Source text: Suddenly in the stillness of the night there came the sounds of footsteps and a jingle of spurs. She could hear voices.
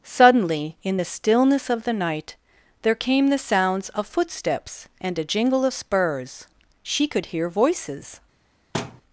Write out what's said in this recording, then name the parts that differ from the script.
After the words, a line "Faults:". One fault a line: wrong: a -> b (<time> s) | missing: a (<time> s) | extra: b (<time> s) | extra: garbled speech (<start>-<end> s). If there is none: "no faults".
Suddenly in the stillness of the night there came the sounds of footsteps and a jingle of spurs. She could hear voices.
Faults:
no faults